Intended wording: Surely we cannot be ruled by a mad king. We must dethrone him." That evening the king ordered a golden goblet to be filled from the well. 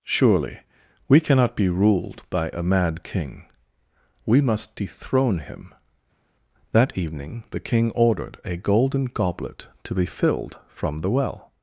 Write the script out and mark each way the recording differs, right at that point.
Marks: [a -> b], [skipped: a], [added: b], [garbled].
Surely we cannot be ruled by a mad king. We must dethrone him." That evening the king ordered a golden goblet to be filled from the well.